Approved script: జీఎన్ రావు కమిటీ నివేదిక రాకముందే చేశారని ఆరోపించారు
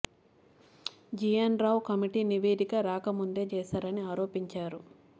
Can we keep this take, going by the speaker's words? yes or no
yes